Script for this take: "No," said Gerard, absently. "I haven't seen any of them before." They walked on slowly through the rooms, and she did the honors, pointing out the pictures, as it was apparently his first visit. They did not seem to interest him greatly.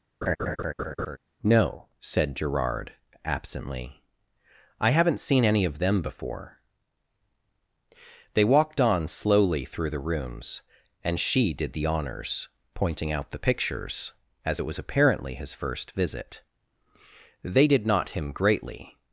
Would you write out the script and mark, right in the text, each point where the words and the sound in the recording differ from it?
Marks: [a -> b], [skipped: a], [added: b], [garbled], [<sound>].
[laugh] "No," said Gerard, absently. "I haven't seen any of them before." They walked on slowly through the rooms, and she did the honors, pointing out the pictures, as it was apparently his first visit. They did not [skipped: seem to interest] him greatly.